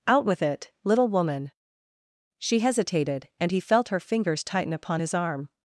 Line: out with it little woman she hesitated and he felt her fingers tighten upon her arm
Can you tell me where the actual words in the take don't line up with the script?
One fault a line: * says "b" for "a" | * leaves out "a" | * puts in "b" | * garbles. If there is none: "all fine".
* says "his" for "her"